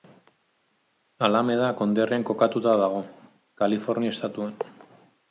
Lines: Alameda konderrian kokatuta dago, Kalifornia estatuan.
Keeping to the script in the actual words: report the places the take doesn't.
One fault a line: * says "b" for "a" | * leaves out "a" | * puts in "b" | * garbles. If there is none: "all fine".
all fine